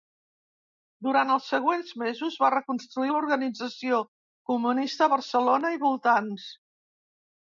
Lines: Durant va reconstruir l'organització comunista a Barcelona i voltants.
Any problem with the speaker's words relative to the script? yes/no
yes